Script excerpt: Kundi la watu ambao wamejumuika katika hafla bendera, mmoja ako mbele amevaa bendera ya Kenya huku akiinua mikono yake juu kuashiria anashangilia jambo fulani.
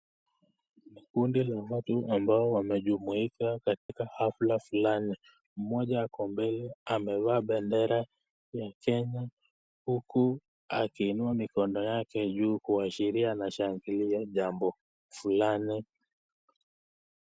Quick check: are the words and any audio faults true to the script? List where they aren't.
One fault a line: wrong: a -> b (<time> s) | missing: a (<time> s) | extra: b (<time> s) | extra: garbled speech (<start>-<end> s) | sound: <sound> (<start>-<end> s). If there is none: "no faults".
sound: dropout (3.8-3.9 s)
wrong: bendera -> fulani (4.6 s)